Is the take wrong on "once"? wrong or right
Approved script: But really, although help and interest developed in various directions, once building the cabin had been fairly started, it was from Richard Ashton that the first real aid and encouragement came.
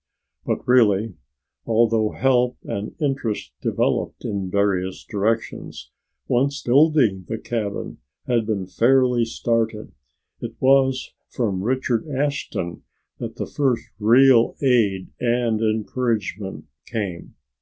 right